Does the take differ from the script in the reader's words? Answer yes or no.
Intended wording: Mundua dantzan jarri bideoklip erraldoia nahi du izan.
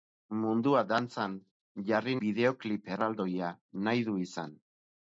no